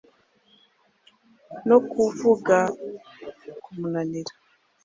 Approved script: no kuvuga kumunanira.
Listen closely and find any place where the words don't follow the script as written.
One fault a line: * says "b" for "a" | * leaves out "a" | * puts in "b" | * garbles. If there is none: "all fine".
all fine